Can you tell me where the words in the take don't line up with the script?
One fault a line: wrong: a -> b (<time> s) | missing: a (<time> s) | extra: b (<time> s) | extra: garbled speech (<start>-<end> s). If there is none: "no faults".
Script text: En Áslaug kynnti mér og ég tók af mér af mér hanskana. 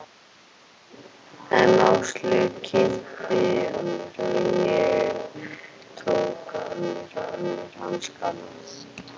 no faults